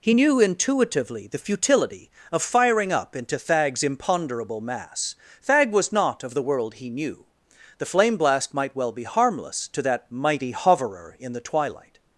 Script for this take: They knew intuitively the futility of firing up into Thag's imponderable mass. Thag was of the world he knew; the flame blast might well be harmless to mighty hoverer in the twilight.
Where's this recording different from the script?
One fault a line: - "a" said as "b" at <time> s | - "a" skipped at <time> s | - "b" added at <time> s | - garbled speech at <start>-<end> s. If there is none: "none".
- "They" said as "He" at 0.0 s
- "not" added at 5.9 s
- "that" added at 9.8 s